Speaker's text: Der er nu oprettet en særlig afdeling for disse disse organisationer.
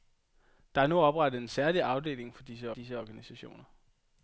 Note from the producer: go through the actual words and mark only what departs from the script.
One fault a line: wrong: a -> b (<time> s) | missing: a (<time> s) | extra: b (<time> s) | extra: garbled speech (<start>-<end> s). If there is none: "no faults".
no faults